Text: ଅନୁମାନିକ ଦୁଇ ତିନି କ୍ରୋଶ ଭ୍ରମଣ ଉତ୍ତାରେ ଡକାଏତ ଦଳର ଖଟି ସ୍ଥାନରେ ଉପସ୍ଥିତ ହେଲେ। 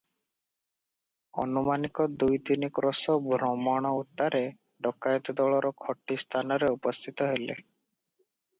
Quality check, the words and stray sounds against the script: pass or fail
pass